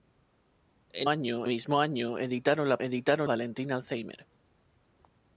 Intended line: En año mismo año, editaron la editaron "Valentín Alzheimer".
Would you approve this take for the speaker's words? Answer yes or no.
yes